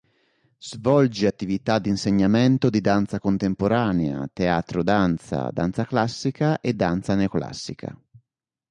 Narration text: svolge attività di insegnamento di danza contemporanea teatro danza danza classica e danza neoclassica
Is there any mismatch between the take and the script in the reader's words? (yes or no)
no